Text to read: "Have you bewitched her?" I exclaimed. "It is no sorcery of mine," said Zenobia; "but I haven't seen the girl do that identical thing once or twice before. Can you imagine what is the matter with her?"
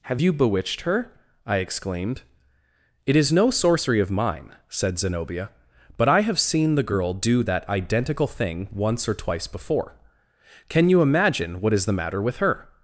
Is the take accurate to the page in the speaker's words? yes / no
no